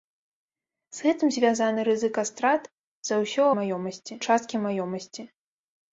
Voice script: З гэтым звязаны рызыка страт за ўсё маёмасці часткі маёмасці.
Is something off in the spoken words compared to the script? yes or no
no